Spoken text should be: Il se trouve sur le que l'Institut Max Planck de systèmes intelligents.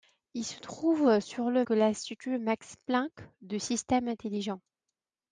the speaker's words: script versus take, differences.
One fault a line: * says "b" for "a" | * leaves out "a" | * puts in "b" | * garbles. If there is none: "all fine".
all fine